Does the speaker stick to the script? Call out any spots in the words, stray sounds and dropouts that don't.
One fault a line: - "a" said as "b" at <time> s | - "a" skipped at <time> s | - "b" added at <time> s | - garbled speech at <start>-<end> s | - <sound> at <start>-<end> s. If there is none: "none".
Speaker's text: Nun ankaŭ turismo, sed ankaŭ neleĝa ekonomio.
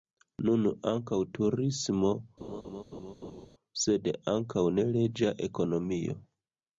- laugh at 2.4-3.5 s